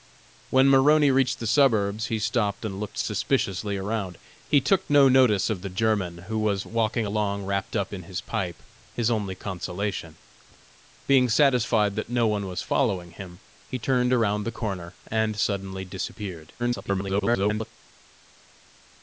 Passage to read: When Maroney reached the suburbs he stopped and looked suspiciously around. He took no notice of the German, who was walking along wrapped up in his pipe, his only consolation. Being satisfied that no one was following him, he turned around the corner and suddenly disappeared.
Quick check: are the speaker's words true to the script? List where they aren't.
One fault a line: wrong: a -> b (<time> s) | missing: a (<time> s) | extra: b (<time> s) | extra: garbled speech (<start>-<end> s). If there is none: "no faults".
extra: garbled speech (16.6-17.7 s)